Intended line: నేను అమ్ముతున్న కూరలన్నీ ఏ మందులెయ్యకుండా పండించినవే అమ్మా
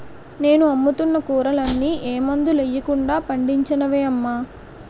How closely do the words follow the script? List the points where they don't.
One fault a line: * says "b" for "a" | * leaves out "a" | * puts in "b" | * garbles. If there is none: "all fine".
all fine